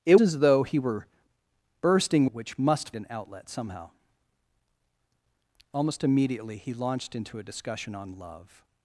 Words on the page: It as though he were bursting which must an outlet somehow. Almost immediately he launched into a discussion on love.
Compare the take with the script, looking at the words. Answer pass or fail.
pass